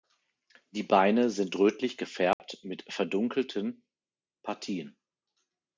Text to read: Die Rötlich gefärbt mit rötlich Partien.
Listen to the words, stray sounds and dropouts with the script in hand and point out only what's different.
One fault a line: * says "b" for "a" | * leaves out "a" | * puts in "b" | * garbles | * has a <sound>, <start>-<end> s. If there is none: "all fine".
* puts in "Beine sind"
* has a dropout, 2.3-2.4 s
* says "verdunkelten" for "rötlich"